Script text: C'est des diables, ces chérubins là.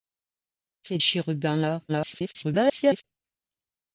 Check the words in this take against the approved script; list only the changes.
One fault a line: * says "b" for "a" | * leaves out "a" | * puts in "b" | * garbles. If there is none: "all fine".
* leaves out "des diables ces"
* garbles